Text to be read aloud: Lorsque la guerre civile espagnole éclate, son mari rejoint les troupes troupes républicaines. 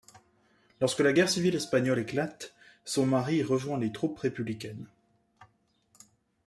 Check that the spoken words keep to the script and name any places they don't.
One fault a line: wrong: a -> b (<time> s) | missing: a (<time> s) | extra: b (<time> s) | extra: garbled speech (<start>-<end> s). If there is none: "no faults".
missing: troupes (4.2 s)